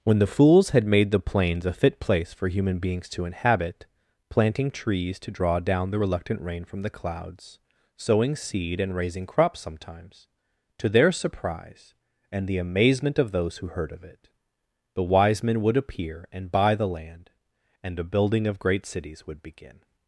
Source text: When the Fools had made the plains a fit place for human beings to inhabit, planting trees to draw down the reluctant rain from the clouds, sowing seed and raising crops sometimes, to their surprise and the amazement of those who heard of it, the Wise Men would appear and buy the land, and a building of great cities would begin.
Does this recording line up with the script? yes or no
yes